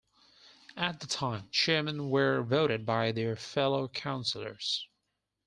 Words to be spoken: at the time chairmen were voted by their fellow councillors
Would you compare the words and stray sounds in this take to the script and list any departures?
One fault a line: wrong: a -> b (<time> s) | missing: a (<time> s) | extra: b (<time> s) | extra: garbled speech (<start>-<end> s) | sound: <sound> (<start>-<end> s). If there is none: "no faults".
no faults